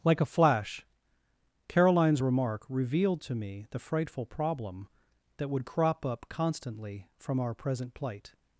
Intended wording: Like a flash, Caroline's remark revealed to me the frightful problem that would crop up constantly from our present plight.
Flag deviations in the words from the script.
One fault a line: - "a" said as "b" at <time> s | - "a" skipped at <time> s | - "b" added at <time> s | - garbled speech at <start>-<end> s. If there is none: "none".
none